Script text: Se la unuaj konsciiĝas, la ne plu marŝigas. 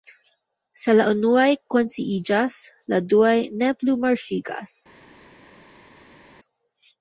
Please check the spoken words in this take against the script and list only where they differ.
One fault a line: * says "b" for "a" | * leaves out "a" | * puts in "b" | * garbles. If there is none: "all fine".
* puts in "duaj"